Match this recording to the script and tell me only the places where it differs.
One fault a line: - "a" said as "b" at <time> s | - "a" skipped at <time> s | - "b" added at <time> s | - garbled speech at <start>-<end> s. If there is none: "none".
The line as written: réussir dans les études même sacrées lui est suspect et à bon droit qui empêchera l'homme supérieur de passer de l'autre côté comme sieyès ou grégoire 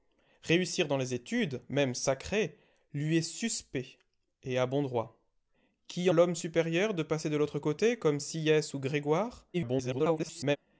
- "empêchera" skipped at 6.1 s
- garbled speech at 9.5-10.6 s